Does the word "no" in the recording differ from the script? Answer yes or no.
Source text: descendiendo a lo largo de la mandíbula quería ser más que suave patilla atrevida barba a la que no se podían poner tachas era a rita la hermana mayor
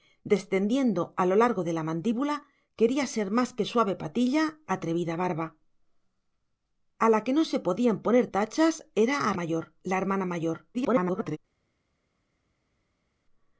no